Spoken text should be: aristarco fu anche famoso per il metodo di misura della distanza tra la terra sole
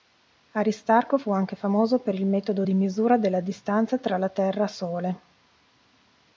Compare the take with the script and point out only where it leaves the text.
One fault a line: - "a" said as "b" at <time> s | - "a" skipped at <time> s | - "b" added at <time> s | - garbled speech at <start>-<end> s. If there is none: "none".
none